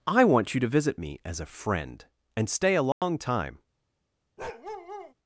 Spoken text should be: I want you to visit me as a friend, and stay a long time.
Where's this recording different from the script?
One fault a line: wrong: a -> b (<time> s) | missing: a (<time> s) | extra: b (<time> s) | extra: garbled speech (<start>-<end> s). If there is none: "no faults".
no faults